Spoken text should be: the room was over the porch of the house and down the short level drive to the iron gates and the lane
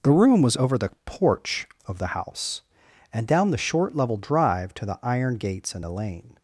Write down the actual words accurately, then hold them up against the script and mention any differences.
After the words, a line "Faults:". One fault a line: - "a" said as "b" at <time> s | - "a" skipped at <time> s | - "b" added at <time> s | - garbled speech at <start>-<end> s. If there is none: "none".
the room was over the porch of the house and down the short level drive to the iron gates and the lane
Faults:
none